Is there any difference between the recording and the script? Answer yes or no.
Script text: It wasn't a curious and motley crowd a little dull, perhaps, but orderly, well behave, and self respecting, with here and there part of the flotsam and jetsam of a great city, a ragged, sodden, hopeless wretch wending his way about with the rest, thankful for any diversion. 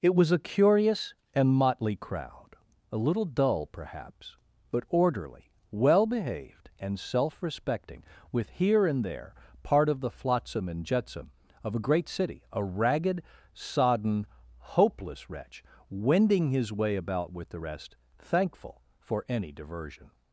yes